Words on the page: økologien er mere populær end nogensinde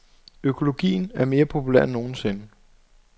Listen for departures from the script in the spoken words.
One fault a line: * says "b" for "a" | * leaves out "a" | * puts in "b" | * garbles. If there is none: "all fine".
all fine